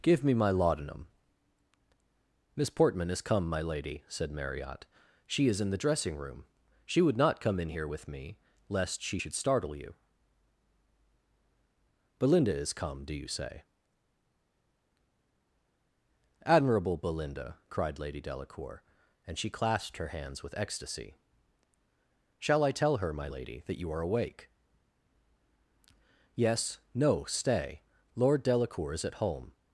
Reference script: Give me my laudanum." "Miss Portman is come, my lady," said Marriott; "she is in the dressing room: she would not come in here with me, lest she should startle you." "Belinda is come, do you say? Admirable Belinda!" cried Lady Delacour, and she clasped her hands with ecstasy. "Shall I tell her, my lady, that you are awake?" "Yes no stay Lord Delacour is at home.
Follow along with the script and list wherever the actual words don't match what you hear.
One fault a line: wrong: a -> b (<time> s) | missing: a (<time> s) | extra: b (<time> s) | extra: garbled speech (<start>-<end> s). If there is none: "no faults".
no faults